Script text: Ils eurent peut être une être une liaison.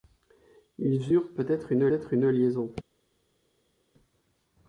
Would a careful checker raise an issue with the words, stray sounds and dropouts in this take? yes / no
no